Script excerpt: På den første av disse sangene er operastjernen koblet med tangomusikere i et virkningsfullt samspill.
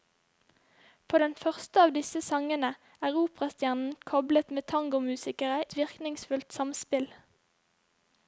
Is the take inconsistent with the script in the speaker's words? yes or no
yes